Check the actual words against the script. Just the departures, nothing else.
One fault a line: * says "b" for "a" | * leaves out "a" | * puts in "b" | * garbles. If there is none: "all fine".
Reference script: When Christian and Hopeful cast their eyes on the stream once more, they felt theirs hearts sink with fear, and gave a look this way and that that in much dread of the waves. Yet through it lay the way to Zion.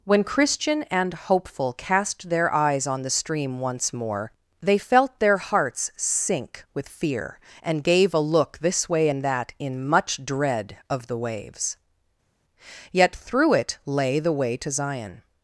* says "their" for "theirs"
* leaves out "that"